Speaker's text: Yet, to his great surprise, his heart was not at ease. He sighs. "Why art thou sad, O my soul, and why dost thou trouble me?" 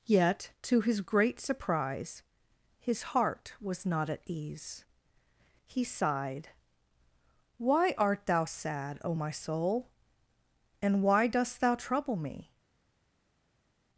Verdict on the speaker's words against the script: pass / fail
fail